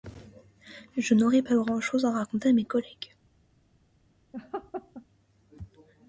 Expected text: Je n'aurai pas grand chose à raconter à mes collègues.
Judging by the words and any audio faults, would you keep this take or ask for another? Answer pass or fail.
fail